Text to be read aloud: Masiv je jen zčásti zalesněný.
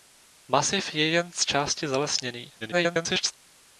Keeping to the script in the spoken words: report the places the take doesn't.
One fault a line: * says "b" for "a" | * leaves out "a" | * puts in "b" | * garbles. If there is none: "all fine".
* garbles